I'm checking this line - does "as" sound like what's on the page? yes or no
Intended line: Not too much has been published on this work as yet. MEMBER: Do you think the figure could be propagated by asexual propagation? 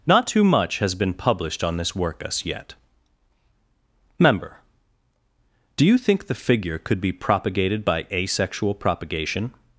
no